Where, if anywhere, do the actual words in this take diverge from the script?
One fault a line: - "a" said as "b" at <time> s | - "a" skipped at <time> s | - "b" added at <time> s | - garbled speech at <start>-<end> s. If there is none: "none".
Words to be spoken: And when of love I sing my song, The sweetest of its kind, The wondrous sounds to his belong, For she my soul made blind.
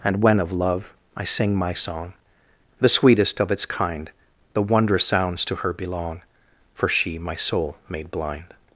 - "his" said as "her" at 5.5 s